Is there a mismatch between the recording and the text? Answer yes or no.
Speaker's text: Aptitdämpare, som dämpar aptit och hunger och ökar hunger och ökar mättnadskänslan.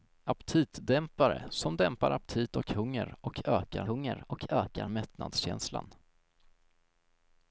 no